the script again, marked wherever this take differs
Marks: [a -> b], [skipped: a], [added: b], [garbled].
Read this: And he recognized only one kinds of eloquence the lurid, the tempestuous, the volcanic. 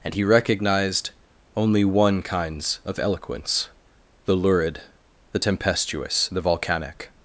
And he recognized only one kinds of eloquence the lurid, the tempestuous, the volcanic.